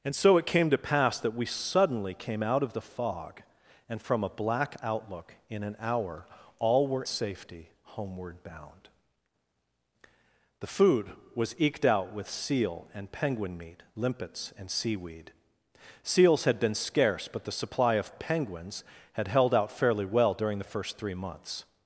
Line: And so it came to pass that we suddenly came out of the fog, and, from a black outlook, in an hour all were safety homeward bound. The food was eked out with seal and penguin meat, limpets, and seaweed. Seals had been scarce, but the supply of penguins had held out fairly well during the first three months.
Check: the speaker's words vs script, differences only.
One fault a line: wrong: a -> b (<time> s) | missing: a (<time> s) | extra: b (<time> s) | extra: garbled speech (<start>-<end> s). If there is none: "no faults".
no faults